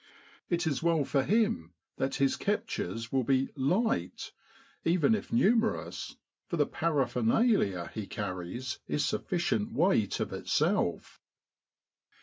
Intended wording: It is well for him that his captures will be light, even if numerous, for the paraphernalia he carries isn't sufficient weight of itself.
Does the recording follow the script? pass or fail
fail